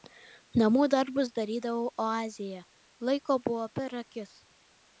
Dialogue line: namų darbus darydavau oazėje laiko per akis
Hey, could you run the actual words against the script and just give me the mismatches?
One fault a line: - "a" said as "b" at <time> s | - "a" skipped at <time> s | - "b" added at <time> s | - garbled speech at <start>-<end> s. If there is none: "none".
- "buvo" added at 3.5 s